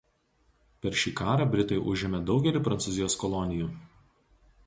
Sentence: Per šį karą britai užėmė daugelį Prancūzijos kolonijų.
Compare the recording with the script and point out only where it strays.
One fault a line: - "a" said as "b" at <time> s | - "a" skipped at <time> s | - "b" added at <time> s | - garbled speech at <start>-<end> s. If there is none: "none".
none